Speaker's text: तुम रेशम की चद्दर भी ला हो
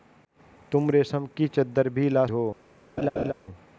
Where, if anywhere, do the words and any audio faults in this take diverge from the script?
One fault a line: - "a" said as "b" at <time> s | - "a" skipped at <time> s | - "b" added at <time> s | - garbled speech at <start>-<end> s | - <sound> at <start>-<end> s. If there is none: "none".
- laugh at 3.0-3.3 s